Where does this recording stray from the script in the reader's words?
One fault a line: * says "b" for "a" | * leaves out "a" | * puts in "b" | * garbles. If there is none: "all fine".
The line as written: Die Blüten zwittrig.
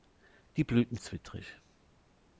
all fine